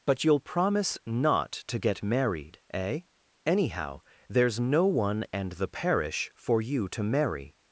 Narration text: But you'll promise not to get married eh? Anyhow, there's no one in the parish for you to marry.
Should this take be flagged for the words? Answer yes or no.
yes